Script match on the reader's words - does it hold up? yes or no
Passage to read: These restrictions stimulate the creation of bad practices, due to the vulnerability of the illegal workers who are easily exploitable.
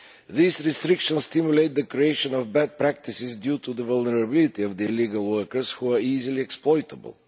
yes